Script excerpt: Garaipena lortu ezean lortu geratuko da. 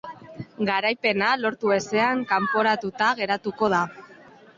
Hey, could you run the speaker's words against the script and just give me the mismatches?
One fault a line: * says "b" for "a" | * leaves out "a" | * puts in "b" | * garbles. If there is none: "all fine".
* says "kanporatuta" for "lortu"